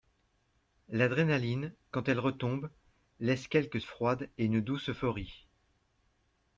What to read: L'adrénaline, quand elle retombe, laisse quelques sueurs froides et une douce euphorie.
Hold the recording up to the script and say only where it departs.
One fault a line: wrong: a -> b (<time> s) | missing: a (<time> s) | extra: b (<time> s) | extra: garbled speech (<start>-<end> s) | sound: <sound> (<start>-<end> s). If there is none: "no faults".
missing: sueurs (3.8 s)